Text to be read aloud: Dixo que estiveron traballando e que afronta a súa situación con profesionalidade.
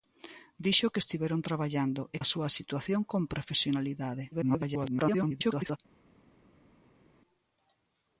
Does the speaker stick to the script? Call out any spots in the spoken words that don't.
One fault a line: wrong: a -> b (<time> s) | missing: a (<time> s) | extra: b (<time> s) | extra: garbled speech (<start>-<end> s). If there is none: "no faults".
missing: que afronta (2.2 s)
extra: garbled speech (4.3-5.8 s)